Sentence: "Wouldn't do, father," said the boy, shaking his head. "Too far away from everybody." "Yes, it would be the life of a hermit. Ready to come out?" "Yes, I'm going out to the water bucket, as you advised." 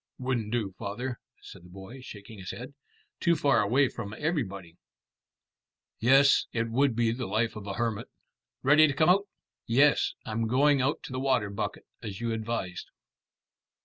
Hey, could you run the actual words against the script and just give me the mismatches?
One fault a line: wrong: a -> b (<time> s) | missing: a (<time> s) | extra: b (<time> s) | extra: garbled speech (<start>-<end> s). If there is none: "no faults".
no faults